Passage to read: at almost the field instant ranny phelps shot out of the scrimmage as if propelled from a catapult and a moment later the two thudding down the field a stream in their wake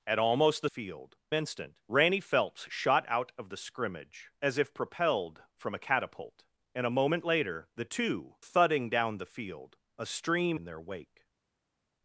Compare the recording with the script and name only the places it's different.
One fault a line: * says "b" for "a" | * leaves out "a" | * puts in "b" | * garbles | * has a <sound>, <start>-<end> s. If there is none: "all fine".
all fine